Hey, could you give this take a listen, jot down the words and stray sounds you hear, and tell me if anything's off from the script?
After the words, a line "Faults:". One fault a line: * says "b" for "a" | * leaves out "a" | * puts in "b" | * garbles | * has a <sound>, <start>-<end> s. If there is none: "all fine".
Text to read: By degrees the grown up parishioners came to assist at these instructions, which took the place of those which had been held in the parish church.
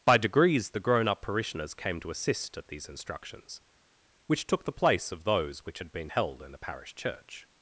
By degrees the grown up parishioners came to assist at these instructions, which took the place of those which had been held in the parish church.
Faults:
all fine